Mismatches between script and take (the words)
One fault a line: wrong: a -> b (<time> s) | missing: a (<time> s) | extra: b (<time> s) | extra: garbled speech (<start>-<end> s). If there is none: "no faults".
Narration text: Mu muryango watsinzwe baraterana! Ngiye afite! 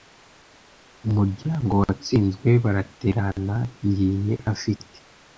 no faults